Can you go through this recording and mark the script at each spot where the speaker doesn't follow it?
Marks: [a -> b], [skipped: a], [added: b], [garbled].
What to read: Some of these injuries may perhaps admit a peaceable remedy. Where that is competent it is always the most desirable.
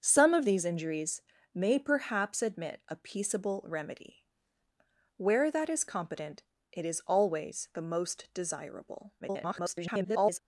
Some of these injuries may perhaps admit a peaceable remedy. Where that is competent it is always the most desirable. [garbled]